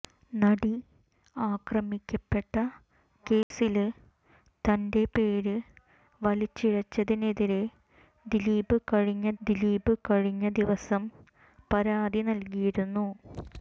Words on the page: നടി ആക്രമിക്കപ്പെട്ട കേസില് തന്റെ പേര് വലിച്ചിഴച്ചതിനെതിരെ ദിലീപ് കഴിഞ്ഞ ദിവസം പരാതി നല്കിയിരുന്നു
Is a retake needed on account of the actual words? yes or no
yes